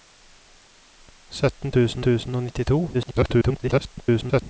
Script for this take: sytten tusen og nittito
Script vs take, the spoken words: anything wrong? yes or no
yes